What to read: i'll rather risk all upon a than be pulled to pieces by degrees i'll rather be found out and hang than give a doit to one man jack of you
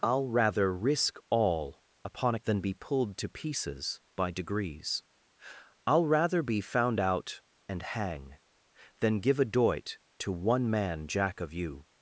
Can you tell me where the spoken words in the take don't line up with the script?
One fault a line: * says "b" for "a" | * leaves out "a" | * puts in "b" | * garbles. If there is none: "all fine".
all fine